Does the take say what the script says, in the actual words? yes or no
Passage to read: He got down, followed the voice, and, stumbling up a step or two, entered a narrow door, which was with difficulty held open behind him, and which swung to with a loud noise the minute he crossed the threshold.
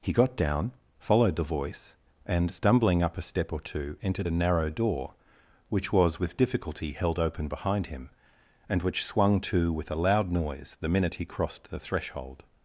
yes